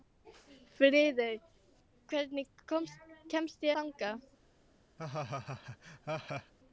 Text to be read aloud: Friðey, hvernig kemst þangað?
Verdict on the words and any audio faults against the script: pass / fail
fail